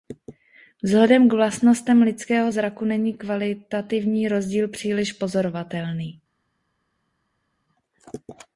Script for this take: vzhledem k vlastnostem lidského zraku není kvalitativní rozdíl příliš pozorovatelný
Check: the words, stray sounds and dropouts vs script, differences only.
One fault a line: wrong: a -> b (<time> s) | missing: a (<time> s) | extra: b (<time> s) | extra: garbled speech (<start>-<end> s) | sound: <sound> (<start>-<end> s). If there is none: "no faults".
no faults